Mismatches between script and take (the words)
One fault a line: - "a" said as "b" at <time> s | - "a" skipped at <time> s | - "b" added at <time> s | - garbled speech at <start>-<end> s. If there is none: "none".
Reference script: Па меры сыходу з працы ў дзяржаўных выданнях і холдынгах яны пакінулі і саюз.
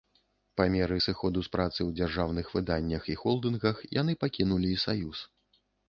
none